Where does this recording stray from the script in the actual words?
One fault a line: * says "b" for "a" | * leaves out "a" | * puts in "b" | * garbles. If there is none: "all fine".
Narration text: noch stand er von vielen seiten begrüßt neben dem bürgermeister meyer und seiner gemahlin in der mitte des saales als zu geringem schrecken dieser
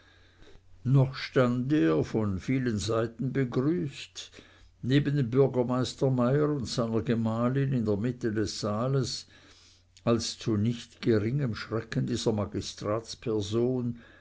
* puts in "nicht"